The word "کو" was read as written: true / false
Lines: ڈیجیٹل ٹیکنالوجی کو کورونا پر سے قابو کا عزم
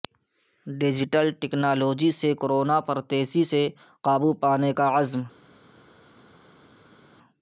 false